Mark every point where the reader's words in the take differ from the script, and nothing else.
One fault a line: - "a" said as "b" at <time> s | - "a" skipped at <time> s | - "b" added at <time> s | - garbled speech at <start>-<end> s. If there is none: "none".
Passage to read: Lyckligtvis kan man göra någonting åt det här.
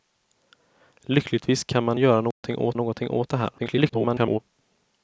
- "någonting åt" added at 2.7 s
- garbled speech at 3.6-4.4 s